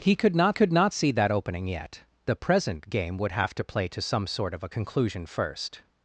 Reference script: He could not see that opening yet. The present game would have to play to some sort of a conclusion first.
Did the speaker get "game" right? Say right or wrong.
right